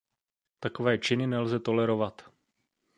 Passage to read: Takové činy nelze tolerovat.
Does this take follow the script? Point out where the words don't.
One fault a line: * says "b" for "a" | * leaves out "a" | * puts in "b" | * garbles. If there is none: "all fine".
all fine